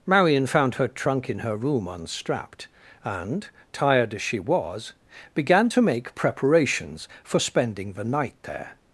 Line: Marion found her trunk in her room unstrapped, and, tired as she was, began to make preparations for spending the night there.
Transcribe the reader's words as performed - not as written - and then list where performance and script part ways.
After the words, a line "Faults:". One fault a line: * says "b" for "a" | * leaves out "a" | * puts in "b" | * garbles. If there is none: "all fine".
Marion found her trunk in her room unstrapped, and, tired as she was, began to make preparations for spending the night there.
Faults:
all fine